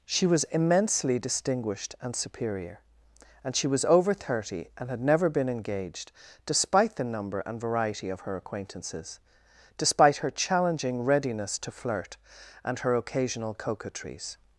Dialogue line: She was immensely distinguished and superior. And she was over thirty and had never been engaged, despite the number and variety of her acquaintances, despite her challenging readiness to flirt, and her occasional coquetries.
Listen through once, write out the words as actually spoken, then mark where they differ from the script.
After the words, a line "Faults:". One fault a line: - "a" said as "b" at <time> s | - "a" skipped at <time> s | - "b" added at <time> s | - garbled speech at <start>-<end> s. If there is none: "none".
She was immensely distinguished and superior. And she was over thirty and had never been engaged, despite the number and variety of her acquaintances, despite her challenging readiness to flirt, and her occasional coquetries.
Faults:
none